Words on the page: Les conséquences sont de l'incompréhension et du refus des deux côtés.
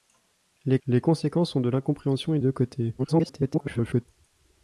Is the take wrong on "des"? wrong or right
wrong